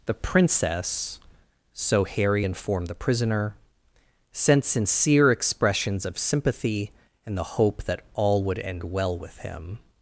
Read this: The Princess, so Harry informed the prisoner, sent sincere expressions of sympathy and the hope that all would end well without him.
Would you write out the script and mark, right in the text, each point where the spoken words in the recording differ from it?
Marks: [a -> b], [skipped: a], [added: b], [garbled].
The Princess, so Harry informed the prisoner, sent sincere expressions of sympathy and the hope that all would end well [without -> with] him.